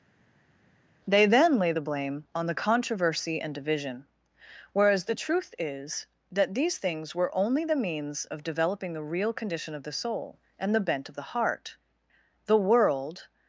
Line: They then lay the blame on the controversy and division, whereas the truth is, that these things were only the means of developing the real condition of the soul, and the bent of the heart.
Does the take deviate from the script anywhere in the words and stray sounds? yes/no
yes